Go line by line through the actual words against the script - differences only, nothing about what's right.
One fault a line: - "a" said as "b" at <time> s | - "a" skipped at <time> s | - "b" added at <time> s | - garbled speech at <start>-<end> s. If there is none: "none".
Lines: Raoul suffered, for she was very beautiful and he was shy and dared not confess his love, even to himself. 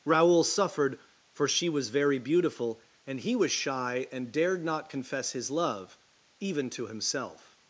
none